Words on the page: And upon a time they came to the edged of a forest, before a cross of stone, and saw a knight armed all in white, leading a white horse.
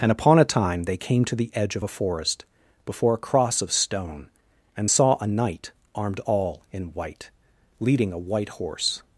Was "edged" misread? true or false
true